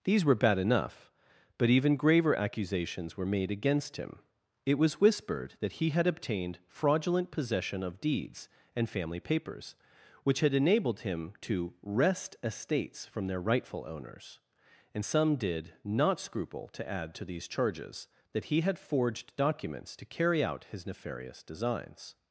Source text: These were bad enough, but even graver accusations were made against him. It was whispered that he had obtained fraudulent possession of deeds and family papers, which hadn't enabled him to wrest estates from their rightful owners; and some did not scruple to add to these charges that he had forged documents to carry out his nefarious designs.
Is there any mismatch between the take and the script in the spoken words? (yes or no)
yes